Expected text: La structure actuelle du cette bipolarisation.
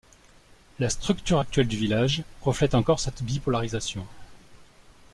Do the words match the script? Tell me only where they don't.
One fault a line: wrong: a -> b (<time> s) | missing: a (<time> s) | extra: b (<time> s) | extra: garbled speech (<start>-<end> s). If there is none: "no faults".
extra: village reflète encore (1.7 s)